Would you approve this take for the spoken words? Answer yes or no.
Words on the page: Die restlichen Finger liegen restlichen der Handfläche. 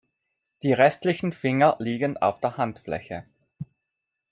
no